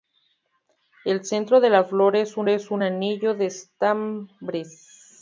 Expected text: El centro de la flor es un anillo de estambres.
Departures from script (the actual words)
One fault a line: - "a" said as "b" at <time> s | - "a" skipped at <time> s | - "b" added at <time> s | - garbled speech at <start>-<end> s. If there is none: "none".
- "es un" added at 2.5 s